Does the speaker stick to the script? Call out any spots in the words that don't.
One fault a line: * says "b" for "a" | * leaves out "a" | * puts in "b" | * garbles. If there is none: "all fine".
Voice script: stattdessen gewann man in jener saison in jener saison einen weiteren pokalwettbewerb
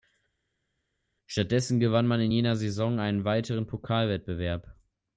* leaves out "in jener saison"